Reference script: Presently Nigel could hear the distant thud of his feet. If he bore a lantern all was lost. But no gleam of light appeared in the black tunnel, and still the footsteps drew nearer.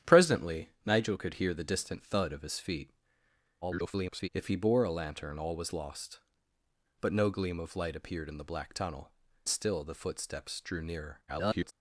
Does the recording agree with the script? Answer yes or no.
no